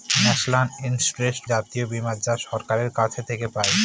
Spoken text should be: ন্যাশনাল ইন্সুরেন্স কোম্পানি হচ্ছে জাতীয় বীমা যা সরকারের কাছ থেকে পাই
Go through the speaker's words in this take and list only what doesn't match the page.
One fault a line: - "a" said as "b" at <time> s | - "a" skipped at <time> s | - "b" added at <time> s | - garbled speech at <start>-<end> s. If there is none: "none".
- "কোম্পানি হচ্ছে" skipped at 1.4 s